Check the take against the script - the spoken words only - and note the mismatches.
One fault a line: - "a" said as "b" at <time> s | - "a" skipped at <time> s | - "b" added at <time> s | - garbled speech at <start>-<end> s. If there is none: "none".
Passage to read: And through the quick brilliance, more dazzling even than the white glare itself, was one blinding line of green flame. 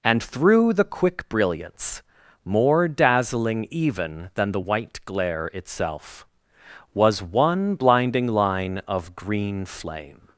none